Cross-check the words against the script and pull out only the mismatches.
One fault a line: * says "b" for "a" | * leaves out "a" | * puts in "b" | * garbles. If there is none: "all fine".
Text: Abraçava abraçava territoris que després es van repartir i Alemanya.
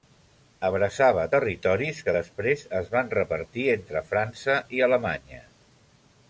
* leaves out "abraçava"
* puts in "entre França"